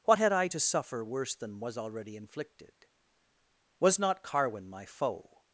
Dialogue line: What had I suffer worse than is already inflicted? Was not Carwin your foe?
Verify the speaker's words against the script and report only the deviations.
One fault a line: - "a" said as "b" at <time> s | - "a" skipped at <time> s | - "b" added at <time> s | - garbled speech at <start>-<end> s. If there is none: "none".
- "to" added at 0.5 s
- "is" said as "was" at 1.6 s
- "your" said as "my" at 4.7 s